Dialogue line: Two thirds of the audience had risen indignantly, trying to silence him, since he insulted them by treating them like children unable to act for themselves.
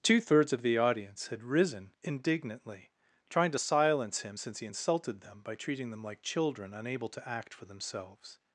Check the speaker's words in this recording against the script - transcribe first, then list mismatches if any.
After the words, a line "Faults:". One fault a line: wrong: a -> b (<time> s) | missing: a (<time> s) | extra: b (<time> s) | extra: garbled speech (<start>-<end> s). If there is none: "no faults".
Two thirds of the audience had risen indignantly, trying to silence him, since he insulted them by treating them like children unable to act for themselves.
Faults:
no faults